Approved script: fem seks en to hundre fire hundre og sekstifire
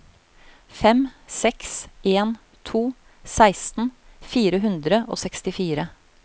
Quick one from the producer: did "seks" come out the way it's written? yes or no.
yes